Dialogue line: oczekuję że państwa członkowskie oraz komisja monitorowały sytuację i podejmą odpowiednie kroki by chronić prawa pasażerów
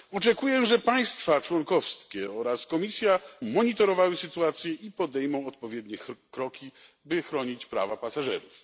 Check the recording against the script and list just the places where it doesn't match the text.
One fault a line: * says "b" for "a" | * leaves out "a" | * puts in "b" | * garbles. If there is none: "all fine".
all fine